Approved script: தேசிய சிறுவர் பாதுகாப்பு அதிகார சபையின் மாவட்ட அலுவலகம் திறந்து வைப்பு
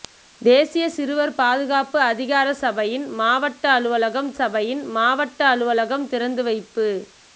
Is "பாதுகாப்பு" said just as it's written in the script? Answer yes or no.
yes